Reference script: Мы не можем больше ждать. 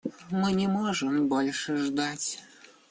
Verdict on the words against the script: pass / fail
pass